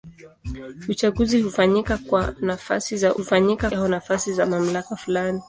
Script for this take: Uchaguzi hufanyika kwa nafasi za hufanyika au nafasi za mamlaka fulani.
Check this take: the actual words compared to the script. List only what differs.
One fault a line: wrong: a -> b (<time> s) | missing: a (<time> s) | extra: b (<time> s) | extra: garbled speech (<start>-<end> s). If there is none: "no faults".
no faults